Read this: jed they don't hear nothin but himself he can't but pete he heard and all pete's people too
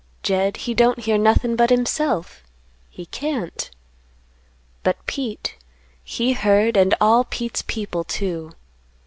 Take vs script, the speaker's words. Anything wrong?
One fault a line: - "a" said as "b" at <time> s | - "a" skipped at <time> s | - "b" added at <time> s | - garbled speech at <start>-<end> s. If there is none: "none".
- "they" said as "he" at 0.6 s